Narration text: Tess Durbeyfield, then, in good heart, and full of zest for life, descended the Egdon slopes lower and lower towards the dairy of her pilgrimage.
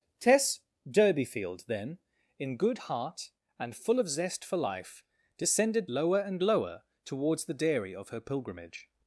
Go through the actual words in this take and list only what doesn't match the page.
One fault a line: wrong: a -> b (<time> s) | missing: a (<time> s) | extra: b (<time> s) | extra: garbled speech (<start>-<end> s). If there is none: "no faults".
missing: the Egdon slopes (5.9 s)